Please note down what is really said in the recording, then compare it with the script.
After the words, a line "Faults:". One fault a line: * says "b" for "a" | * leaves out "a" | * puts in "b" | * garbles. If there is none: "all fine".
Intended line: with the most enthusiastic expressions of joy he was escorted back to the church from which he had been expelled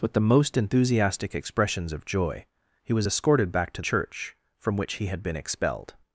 with the most enthusiastic expressions of joy he was escorted back to church from which he had been expelled
Faults:
* leaves out "the"